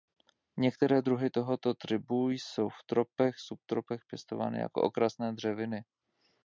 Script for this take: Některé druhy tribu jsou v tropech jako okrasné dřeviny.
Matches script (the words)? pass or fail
fail